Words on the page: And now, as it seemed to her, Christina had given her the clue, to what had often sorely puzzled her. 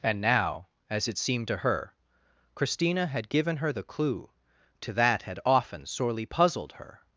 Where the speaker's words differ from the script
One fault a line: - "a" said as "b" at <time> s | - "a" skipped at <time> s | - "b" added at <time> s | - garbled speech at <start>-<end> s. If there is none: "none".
- "what" said as "that" at 4.9 s